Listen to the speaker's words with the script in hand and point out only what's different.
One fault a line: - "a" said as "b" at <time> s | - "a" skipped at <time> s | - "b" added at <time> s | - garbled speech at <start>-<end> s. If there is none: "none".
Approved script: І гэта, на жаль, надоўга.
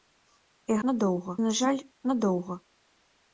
- "гэта" said as "надоўга" at 0.9 s